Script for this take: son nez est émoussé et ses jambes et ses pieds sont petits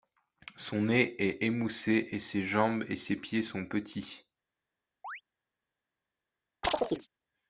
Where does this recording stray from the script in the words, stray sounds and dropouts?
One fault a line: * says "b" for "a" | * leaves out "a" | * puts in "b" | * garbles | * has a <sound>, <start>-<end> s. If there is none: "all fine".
* has a chirp, 5.0-5.2 s
* has a chirp, 6.6-7.1 s